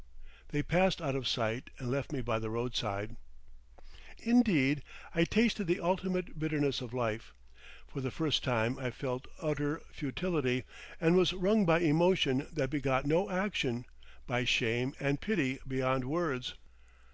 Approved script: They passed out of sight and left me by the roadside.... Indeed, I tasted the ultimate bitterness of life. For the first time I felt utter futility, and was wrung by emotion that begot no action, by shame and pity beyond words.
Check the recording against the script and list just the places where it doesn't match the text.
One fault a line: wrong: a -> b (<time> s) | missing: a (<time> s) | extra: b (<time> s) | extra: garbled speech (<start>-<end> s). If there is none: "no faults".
no faults